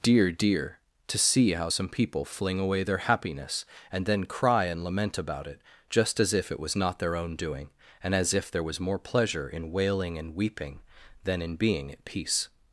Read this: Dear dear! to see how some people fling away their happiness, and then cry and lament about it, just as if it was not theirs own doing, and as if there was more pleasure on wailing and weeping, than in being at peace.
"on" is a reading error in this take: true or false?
true